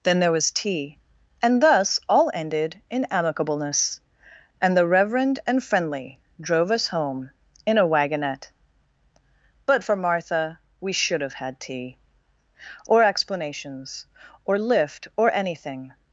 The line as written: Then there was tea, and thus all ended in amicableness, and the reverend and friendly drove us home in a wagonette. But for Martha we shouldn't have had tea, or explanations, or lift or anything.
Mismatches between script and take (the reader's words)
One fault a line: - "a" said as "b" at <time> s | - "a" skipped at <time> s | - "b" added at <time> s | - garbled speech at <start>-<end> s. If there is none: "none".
- "shouldn't" said as "should" at 10.9 s